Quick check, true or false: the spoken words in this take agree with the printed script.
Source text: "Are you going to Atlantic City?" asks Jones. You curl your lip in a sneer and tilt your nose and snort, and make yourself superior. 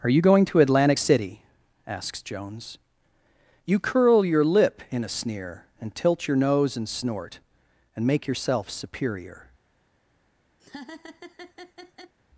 true